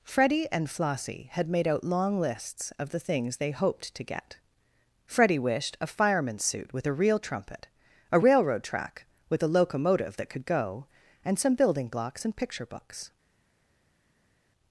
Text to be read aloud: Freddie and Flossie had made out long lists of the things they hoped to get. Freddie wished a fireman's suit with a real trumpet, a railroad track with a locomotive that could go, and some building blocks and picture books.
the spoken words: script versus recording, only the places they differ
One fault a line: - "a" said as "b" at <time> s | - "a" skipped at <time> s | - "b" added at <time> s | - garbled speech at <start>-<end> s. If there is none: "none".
none